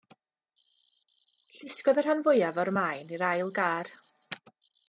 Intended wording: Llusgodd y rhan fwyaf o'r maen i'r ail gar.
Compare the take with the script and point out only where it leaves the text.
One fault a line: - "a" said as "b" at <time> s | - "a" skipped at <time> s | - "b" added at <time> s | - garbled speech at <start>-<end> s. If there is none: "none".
none